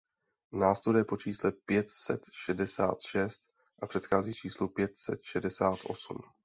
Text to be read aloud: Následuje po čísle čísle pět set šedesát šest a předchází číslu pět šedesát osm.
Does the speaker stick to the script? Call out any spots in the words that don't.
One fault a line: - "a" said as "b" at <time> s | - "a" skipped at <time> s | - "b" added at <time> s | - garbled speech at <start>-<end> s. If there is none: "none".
- "čísle" skipped at 1.5 s
- "set" added at 5.0 s